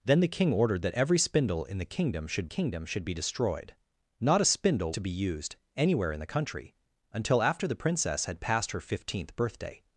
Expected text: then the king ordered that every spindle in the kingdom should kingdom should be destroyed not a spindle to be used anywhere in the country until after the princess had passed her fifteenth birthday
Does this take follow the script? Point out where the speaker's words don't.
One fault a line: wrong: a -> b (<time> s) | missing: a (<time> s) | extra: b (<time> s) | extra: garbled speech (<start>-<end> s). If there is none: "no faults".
no faults